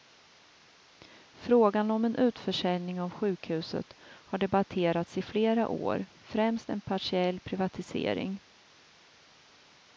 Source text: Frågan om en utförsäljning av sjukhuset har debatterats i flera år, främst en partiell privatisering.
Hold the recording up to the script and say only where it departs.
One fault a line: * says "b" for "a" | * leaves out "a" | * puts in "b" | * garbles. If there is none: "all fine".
all fine